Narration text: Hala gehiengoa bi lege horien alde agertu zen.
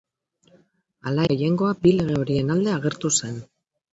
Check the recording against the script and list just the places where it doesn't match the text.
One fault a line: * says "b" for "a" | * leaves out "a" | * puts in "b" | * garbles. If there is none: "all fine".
all fine